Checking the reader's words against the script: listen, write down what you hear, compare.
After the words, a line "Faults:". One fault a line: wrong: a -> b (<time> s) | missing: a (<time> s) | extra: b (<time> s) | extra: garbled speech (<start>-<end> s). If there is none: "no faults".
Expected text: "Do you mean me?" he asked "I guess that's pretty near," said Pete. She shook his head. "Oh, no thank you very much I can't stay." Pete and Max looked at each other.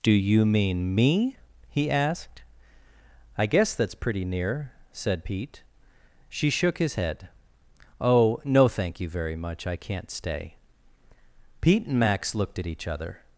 "Do you mean me?" he asked "I guess that's pretty near," said Pete. She shook his head. "Oh, no thank you very much I can't stay." Pete and Max looked at each other.
Faults:
no faults